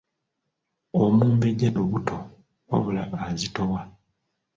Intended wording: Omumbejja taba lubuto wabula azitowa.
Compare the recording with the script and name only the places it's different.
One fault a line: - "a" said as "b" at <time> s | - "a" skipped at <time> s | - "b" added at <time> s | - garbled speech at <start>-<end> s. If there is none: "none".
- "taba" skipped at 1.7 s